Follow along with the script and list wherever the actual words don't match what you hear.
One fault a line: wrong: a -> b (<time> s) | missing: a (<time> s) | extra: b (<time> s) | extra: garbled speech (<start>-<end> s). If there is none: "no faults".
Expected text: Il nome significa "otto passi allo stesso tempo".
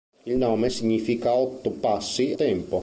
missing: allo stesso (2.3 s)